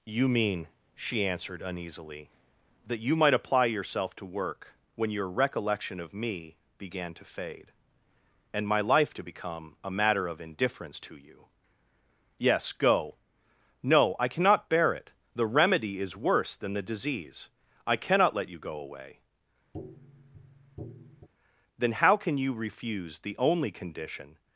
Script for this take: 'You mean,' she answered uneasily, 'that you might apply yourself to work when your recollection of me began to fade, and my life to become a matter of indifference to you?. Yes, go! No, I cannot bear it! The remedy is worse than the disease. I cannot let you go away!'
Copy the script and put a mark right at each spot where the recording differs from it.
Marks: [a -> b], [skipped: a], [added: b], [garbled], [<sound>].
'You mean,' she answered uneasily, 'that you might apply yourself to work when your recollection of me began to fade, and my life to become a matter of indifference to you?. Yes, go! No, I cannot bear it! The remedy is worse than the disease. I cannot let you go away!' [tap] [added: Then how can you refuse the only condition]